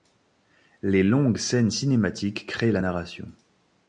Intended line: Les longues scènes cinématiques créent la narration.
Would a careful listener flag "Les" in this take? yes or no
no